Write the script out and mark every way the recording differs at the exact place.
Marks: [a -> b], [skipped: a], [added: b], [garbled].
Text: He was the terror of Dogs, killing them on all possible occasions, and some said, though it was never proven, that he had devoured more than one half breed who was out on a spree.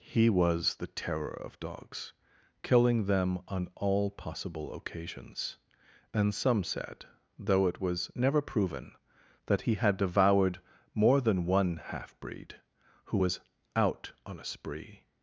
He was the terror of Dogs, killing them on all possible occasions, and some said, though it was never proven, that he had devoured more than one half breed who was out on a spree.